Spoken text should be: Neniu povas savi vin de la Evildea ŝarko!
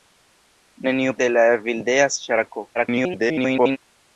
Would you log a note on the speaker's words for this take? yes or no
yes